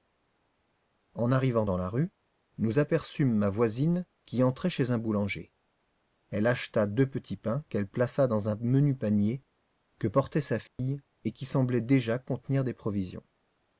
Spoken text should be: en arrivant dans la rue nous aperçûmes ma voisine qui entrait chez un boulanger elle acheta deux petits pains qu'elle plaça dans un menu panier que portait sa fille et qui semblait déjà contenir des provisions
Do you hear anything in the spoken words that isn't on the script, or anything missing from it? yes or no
no